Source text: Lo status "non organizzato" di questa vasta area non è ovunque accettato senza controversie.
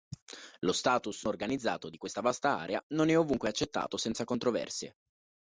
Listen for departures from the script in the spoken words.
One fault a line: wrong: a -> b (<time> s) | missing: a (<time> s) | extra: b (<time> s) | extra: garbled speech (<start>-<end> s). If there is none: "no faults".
missing: non (1.2 s)